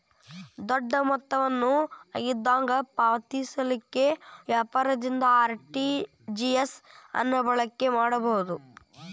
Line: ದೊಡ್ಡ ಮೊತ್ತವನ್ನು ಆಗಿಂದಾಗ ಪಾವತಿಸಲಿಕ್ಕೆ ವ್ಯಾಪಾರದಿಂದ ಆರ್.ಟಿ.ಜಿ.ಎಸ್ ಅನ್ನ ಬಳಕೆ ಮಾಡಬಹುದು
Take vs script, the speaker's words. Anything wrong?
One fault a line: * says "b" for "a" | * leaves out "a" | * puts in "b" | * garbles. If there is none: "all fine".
all fine